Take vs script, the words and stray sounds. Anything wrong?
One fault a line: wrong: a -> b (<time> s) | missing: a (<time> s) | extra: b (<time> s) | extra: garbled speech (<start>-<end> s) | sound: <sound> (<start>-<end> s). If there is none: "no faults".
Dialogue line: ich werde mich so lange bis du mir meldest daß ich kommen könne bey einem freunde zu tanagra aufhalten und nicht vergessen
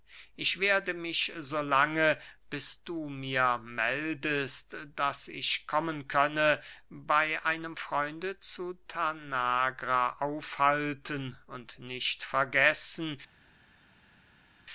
no faults